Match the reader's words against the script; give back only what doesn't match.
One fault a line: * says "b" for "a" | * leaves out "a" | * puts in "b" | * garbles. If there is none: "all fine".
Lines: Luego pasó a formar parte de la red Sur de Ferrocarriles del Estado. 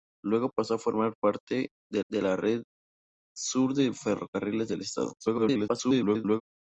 * puts in "de"
* garbles